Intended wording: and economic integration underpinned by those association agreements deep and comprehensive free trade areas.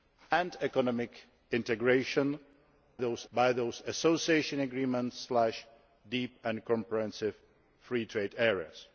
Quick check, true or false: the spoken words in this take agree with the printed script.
false